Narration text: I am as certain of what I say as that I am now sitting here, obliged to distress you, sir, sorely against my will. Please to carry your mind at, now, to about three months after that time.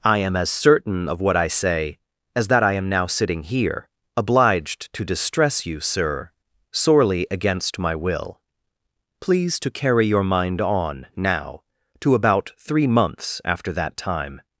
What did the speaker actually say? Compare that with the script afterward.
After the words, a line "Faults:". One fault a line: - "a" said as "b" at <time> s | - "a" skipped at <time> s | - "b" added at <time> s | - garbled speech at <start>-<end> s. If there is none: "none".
I am as certain of what I say as that I am now sitting here, obliged to distress you, sir, sorely against my will. Please to carry your mind on, now, to about three months after that time.
Faults:
- "at" said as "on" at 10.6 s